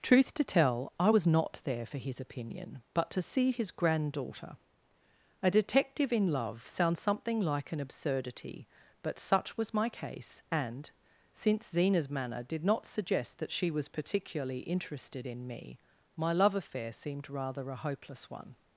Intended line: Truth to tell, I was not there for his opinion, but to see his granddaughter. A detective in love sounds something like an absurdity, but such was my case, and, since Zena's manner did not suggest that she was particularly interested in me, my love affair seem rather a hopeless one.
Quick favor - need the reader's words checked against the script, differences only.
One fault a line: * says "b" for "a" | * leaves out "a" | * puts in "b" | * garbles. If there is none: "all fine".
* says "seemed" for "seem"